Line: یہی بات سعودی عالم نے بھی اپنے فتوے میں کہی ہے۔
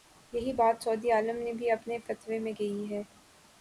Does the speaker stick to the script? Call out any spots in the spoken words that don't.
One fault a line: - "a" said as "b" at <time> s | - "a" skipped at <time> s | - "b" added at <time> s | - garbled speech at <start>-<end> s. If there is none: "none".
none